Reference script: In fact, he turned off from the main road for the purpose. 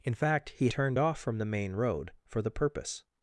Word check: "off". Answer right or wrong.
right